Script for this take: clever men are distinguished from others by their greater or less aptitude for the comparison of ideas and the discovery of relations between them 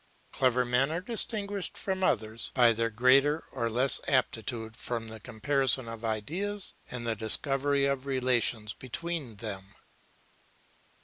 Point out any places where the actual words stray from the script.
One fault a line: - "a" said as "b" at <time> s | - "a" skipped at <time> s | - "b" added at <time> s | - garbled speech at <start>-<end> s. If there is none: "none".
none